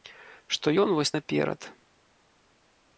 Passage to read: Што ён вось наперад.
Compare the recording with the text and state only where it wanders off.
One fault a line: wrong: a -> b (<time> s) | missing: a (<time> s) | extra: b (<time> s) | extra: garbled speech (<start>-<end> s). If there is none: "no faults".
no faults